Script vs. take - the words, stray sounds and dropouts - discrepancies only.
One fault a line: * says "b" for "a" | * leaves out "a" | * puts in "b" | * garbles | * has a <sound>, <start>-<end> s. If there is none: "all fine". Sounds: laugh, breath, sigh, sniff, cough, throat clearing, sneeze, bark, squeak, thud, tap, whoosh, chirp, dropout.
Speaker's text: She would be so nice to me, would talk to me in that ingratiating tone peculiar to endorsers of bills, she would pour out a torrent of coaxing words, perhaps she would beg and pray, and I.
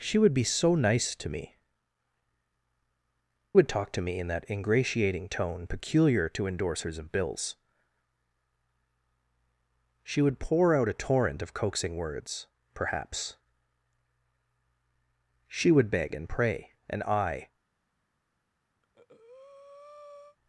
* has a breath, 18.8-20.4 s